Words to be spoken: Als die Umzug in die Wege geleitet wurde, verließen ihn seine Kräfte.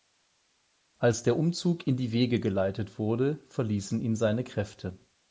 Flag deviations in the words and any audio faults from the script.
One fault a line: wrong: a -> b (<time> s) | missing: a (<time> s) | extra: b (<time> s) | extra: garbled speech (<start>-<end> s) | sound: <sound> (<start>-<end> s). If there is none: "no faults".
wrong: die -> der (1.2 s)